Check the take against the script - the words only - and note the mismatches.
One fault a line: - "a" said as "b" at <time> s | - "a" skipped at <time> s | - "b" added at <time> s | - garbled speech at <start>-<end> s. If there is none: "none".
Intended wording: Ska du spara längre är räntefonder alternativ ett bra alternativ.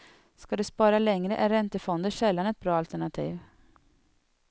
- "alternativ" said as "sällan" at 2.1 s